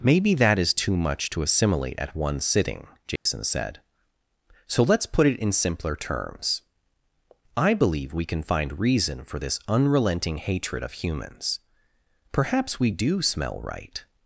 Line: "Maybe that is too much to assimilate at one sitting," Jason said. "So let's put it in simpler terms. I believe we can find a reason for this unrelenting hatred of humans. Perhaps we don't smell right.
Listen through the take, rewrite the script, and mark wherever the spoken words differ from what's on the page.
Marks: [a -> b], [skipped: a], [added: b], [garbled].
"Maybe that is too much to assimilate at one sitting," Jason said. "So let's put it in simpler terms. I believe we can find [skipped: a] reason for this unrelenting hatred of humans. Perhaps we [don't -> do] smell right.